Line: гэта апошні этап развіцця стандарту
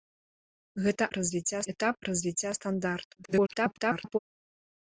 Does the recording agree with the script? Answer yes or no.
no